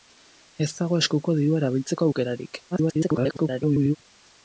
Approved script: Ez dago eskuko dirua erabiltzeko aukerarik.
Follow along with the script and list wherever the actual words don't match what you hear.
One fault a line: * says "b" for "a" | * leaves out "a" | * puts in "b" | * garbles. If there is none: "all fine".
* garbles